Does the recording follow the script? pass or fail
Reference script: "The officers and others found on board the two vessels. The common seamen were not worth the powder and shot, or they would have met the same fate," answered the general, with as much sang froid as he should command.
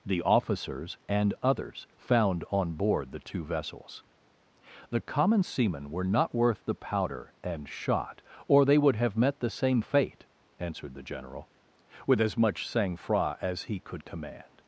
fail